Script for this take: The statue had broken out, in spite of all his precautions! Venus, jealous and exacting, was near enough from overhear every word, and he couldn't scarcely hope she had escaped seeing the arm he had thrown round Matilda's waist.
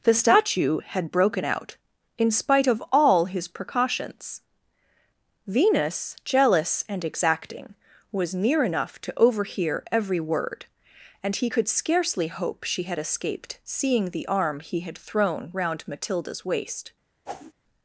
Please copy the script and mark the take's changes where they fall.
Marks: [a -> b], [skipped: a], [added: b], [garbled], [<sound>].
The statue had broken out, in spite of all his precautions! Venus, jealous and exacting, was near enough [from -> to] overhear every word, and he [couldn't -> could] scarcely hope she had escaped seeing the arm he had thrown round Matilda's waist. [whoosh]